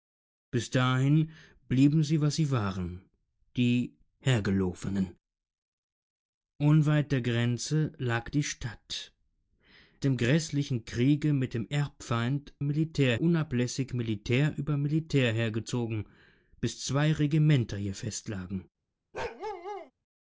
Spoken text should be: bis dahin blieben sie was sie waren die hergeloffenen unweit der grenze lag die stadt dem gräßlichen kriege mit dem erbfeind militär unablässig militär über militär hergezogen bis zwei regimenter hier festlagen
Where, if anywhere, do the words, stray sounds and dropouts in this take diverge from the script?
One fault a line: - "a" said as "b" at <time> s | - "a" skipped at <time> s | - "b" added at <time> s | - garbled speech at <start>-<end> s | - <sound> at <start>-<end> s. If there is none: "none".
- bark at 19.1-19.9 s